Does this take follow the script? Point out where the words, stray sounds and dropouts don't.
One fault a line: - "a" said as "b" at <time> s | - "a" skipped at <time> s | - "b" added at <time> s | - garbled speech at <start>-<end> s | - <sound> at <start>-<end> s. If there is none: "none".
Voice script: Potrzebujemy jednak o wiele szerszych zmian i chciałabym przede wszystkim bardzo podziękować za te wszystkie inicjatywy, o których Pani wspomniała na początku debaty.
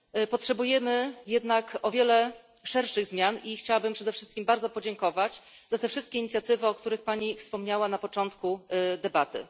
none